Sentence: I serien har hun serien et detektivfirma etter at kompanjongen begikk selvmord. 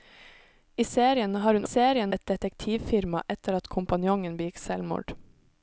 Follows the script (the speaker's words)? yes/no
yes